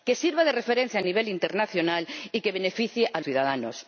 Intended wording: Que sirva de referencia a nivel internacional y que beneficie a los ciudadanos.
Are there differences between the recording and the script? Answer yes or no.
yes